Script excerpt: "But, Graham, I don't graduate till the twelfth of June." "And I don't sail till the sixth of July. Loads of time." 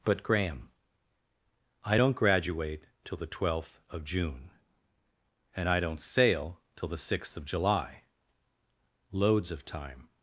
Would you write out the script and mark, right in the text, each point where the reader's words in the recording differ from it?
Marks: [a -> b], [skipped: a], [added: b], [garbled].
"But, Graham, I don't graduate till the twelfth of June." "And I don't sail till the sixth of July. Loads of time."